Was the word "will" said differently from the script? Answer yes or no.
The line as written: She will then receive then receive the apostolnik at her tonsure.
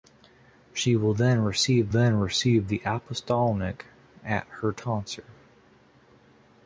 no